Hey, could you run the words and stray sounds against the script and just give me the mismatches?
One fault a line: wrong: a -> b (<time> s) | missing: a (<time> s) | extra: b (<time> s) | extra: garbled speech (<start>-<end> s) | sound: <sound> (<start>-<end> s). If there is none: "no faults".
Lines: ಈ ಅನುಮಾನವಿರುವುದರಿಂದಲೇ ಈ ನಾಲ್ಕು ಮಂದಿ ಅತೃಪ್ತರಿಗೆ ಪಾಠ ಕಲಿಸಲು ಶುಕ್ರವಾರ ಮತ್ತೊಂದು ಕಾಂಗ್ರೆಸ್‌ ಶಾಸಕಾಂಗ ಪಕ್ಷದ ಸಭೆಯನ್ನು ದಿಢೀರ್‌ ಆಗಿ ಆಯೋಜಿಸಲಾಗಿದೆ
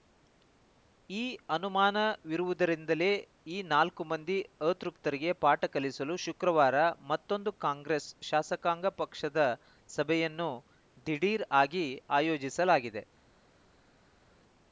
no faults